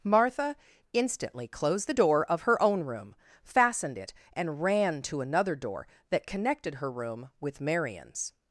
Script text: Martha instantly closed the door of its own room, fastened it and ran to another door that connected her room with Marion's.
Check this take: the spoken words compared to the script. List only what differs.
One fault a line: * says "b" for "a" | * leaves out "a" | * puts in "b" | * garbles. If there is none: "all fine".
* says "her" for "its"